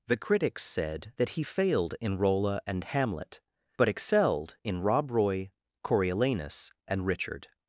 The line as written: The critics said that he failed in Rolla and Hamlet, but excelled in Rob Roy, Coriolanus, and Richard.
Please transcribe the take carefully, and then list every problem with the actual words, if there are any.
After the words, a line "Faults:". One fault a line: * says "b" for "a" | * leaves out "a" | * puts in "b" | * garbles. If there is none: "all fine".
The critics said that he failed in Rolla and Hamlet, but excelled in Rob Roy, Coriolanus, and Richard.
Faults:
all fine